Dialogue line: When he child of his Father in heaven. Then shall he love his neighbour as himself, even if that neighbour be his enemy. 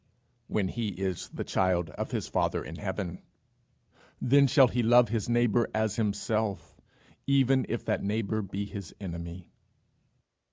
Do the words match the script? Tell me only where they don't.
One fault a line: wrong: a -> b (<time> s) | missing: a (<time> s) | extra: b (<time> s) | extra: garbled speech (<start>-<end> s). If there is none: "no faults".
extra: is the (1.0 s)